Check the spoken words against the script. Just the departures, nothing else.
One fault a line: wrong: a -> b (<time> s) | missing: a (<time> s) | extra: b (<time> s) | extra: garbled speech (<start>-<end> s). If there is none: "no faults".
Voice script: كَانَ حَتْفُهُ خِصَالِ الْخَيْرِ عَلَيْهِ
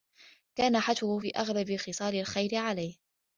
extra: فِي أَغْلَبِ (1.2 s)